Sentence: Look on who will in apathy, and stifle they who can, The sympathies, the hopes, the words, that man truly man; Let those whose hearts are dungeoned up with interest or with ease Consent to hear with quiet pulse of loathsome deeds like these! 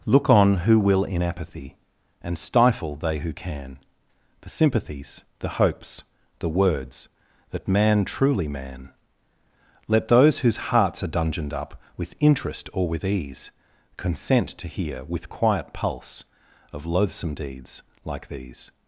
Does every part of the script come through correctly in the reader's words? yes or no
yes